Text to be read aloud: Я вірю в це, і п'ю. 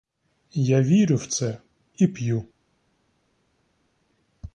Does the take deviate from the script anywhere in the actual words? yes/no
no